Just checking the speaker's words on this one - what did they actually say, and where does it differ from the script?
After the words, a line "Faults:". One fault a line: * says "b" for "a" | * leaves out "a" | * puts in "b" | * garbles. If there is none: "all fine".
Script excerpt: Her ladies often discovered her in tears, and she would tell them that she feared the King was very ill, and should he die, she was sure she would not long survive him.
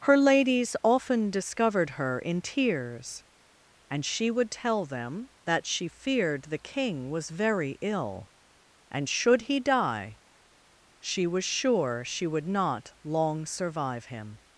Her ladies often discovered her in tears, and she would tell them that she feared the King was very ill, and should he die, she was sure she would not long survive him.
Faults:
all fine